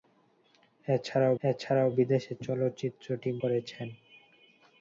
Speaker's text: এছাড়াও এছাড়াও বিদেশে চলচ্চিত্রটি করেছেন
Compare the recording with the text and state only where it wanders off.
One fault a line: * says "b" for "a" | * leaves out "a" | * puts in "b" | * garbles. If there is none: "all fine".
all fine